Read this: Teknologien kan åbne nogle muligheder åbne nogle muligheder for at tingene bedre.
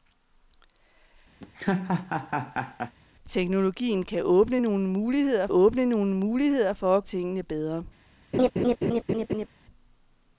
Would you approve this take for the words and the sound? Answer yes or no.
no